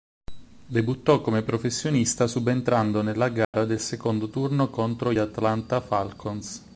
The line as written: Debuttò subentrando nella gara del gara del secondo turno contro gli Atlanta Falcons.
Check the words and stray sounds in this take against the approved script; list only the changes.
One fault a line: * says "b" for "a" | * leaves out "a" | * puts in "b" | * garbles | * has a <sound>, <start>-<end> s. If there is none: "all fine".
* puts in "come professionista"
* has a dropout, 3.4-3.5 s
* leaves out "gara del"